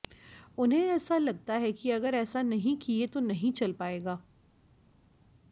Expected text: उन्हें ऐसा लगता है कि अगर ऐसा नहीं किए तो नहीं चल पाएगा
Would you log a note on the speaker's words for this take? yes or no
no